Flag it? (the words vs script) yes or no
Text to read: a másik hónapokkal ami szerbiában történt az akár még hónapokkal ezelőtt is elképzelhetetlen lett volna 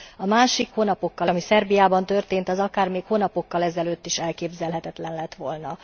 no